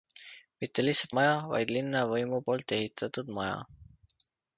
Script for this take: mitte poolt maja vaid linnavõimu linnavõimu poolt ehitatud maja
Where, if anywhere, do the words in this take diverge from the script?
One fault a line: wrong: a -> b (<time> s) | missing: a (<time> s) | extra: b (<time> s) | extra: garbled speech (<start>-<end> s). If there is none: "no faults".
wrong: poolt -> lihtsalt (0.8 s)
missing: linnavõimu (2.4 s)